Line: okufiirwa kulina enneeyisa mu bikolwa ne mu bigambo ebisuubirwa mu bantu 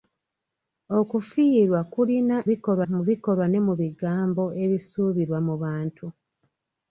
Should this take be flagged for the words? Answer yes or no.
yes